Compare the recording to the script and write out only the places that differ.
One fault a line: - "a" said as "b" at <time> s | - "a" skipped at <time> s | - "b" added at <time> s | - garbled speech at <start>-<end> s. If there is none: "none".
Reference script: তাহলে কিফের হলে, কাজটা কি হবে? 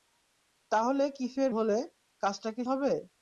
none